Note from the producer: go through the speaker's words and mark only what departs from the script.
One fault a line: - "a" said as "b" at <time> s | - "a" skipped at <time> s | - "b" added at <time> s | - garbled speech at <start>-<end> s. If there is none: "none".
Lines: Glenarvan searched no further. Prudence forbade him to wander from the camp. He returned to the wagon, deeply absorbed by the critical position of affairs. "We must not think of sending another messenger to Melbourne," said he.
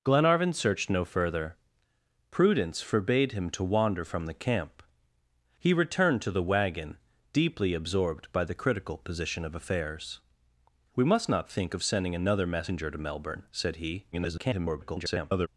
- garbled speech at 14.1-15.5 s